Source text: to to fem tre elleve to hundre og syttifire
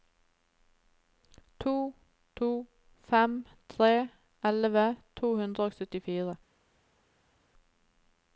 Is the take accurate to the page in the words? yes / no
yes